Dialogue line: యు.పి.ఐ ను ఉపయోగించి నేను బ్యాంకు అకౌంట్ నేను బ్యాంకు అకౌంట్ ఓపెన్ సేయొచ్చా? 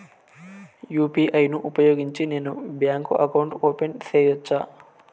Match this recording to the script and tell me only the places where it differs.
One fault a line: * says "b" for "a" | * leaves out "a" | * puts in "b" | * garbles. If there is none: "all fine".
* leaves out "నేను బ్యాంకు అకౌంట్"